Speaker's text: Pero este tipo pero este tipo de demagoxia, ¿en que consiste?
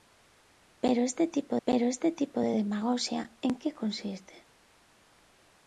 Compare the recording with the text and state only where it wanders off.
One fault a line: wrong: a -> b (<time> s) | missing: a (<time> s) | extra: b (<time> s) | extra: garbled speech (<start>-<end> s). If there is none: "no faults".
no faults